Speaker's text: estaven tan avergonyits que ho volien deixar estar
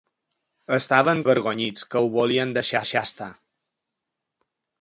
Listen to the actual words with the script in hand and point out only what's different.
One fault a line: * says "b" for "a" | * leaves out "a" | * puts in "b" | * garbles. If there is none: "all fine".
* leaves out "tan"
* puts in "deixar"